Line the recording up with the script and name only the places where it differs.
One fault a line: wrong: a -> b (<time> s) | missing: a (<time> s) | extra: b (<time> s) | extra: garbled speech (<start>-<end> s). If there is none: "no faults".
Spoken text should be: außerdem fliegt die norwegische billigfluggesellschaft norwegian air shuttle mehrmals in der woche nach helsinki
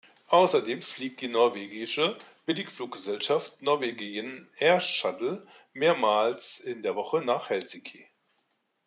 no faults